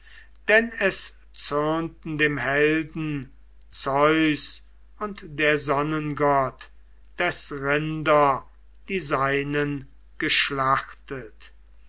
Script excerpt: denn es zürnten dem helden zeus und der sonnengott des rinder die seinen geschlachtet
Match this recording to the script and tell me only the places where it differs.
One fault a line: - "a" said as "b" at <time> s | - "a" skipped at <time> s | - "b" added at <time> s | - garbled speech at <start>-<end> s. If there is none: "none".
none